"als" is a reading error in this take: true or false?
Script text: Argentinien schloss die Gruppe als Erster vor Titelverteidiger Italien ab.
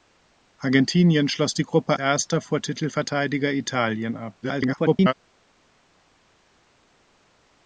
true